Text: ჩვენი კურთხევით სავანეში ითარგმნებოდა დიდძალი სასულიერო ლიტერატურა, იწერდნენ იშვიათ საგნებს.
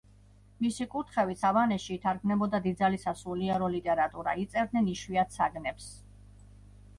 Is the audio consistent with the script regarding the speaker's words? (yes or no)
no